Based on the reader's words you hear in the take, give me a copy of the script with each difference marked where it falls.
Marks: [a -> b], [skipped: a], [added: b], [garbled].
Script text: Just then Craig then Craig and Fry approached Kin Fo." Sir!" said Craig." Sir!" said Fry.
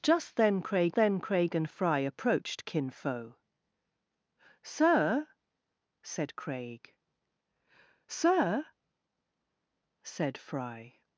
Just then Craig then Craig and Fry approached Kin Fo." Sir!" said Craig." Sir!" said Fry.